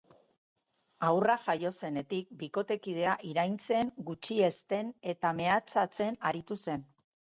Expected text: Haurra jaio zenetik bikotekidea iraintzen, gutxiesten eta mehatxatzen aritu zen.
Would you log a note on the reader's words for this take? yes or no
no